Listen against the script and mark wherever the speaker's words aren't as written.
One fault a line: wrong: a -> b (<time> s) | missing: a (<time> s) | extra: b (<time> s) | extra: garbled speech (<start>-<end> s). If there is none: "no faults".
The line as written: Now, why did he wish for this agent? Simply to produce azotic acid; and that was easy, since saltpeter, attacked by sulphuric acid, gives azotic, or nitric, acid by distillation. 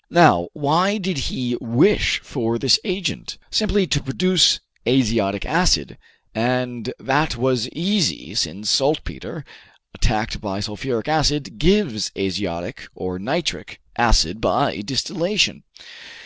no faults